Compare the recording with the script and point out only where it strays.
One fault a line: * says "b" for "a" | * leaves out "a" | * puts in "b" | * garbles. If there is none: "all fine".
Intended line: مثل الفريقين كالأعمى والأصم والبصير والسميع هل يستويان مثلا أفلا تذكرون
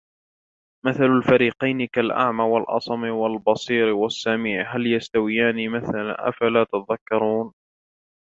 all fine